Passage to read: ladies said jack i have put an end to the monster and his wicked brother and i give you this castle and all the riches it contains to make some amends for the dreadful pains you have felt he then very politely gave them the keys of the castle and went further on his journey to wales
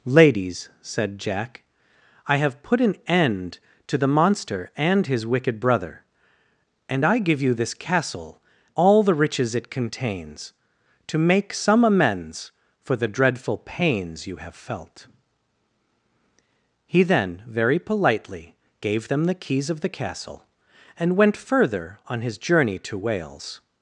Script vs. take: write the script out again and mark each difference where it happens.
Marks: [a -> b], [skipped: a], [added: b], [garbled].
ladies said jack i have put an end to the monster and his wicked brother and i give you this castle [skipped: and] all the riches it contains to make some amends for the dreadful pains you have felt he then very politely gave them the keys of the castle and went further on his journey to wales